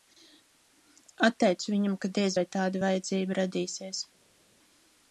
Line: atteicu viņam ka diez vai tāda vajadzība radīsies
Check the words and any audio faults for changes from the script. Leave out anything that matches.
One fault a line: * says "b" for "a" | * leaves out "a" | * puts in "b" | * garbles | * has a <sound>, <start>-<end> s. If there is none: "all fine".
all fine